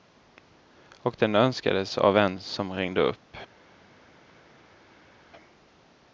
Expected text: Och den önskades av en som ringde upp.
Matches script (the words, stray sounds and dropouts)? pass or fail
pass